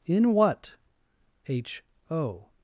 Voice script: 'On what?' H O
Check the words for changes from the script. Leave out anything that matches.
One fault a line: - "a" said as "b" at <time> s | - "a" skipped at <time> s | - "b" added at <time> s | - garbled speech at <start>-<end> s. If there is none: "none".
- "On" said as "In" at 0.1 s